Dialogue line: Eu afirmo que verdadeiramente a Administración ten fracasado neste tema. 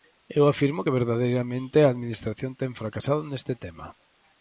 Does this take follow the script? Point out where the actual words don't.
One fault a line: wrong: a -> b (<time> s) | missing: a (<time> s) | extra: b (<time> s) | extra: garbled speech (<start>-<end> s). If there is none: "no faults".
no faults